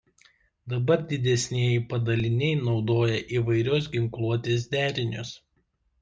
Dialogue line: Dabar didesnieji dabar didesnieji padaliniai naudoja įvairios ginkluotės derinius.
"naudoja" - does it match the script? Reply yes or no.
yes